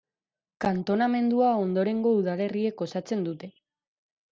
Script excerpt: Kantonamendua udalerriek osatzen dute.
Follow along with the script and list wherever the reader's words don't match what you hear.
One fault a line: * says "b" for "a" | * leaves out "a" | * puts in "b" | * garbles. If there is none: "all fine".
* puts in "ondorengo"